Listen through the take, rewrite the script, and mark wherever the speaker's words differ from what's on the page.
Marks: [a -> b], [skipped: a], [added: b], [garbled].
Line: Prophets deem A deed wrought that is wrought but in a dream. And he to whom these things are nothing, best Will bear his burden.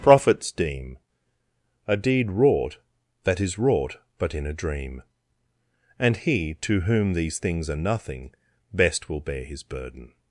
Prophets deem A deed wrought that is wrought but in a dream. And he to whom these things are nothing, best Will bear his burden.